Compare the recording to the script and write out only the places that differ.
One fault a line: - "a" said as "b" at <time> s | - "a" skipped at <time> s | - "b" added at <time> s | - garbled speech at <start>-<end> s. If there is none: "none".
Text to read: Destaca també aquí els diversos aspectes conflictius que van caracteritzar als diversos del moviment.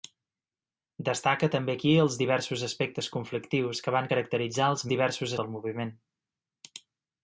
none